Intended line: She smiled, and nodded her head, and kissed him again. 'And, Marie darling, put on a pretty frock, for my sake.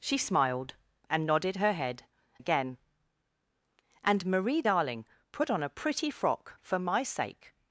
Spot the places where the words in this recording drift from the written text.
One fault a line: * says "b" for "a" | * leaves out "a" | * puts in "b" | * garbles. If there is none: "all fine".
* leaves out "and kissed him"